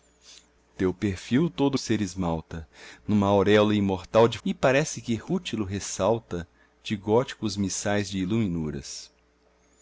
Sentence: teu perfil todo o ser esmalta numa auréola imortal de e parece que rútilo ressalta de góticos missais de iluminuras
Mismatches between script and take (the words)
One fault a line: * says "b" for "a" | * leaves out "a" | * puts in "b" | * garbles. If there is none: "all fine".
all fine